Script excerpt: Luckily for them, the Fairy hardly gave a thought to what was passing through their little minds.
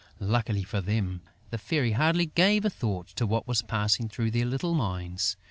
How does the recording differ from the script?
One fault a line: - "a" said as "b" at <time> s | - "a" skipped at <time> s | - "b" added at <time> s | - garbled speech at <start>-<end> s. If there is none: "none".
none